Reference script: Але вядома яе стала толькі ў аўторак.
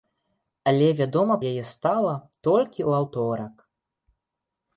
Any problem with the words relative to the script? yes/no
no